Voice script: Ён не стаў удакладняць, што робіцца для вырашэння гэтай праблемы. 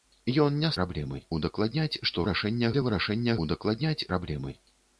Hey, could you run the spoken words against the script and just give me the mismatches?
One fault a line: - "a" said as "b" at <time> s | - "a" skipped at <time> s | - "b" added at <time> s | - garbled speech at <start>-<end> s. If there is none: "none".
- "стаў" said as "праблемы" at 0.8 s
- "робіцца" said as "вырашэння" at 2.2 s
- "гэтай" said as "удакладняць" at 3.4 s